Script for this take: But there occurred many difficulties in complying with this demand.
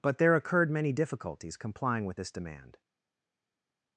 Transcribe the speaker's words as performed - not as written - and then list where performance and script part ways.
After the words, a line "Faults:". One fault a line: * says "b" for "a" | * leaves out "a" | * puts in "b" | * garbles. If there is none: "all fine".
But there occurred many difficulties complying with this demand.
Faults:
* leaves out "in"